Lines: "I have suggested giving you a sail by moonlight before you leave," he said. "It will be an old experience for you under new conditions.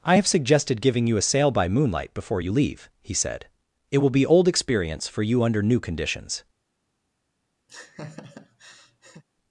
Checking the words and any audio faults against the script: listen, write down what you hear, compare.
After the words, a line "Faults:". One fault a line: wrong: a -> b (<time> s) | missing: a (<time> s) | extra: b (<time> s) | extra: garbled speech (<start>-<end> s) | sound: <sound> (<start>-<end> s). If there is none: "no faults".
"I have suggested giving you a sail by moonlight before you leave," he said. "It will be old experience for you under new conditions.
Faults:
missing: an (4.3 s)
sound: laugh (7.7-9.2 s)